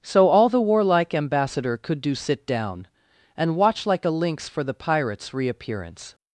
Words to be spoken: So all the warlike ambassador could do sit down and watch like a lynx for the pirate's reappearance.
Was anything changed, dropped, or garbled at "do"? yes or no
no